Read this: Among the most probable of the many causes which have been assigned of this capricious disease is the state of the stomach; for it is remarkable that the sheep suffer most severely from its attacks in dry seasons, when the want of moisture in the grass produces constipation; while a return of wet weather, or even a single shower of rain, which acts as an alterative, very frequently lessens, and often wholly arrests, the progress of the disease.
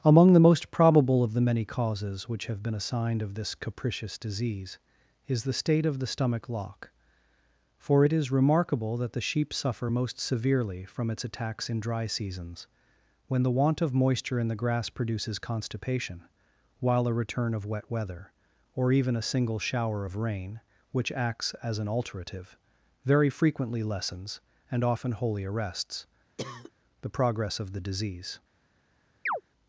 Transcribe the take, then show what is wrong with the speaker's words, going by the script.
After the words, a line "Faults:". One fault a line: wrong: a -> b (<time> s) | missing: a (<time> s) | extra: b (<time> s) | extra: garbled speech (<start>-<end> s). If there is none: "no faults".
Among the most probable of the many causes which have been assigned of this capricious disease is the state of the stomach; lock for it is remarkable that the sheep suffer most severely from its attacks in dry seasons, when the want of moisture in the grass produces constipation; while a return of wet weather, or even a single shower of rain, which acts as an alterative, very frequently lessens, and often wholly arrests, the progress of the disease.
Faults:
extra: lock (6.5 s)